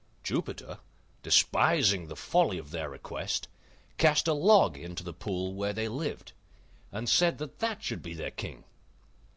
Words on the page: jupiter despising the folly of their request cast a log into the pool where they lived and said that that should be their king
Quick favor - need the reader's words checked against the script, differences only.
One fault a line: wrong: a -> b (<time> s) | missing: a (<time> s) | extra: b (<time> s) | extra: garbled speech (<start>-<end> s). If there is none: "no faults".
no faults